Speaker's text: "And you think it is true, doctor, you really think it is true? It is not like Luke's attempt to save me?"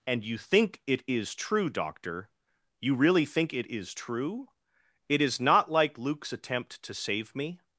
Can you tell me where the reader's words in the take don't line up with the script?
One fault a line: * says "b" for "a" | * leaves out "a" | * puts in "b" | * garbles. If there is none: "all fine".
all fine